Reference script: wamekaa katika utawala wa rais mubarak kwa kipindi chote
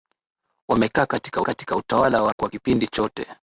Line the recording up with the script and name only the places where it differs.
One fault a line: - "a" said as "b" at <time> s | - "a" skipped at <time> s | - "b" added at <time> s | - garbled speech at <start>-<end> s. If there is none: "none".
- "katika" added at 1.4 s
- "rais mubarak" skipped at 2.3 s